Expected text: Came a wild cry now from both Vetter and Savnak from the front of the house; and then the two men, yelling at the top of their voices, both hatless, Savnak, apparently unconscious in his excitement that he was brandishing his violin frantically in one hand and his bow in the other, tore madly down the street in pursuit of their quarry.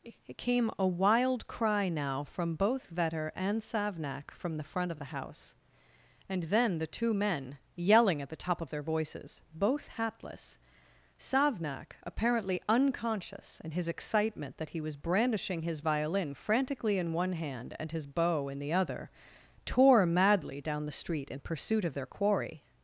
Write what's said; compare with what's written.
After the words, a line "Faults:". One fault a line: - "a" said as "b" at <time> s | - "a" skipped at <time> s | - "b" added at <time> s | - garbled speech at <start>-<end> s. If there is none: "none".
it Came a wild cry now from both Vetter and Savnak from the front of the house; and then the two men, yelling at the top of their voices, both hatless, Savnak, apparently unconscious in his excitement that he was brandishing his violin frantically in one hand and his bow in the other, tore madly down the street in pursuit of their quarry.
Faults:
- "it" added at 0.0 s